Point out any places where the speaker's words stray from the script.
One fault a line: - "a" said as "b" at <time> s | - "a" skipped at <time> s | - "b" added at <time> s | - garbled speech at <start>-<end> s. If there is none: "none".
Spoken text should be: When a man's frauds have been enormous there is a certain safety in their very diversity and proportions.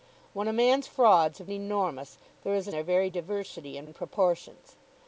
- "been" skipped at 1.5 s
- "certain safety in" skipped at 2.7 s
- "and" added at 3.8 s